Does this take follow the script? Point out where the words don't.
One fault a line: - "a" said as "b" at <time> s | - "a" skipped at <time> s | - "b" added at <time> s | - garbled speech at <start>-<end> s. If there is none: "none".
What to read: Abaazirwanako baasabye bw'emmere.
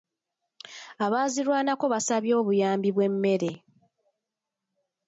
- "obuyambi" added at 2.4 s